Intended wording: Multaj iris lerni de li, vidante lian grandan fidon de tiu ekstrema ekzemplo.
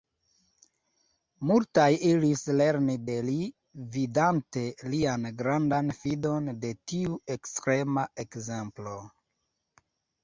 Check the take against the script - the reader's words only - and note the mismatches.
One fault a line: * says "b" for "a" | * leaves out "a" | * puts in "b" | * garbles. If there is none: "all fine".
all fine